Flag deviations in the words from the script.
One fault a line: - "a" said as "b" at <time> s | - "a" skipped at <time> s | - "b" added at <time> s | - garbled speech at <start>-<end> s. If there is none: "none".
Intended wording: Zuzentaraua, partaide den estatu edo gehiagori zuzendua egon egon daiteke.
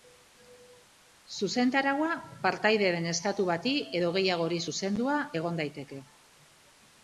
- "bati" added at 3.5 s
- "egon" skipped at 5.7 s